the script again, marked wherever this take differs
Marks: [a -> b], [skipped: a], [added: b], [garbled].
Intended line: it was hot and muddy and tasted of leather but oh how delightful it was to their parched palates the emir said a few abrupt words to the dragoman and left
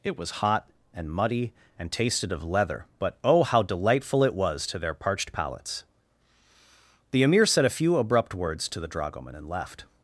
it was hot and muddy and tasted of leather but oh how delightful it was to their parched palates the emir said a few abrupt words to the dragoman and left